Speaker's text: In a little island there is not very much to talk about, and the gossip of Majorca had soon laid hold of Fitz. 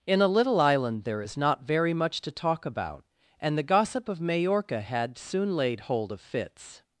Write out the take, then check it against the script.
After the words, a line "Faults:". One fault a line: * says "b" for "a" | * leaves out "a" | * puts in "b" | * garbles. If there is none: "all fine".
In a little island there is not very much to talk about, and the gossip of Majorca had soon laid hold of Fitz.
Faults:
all fine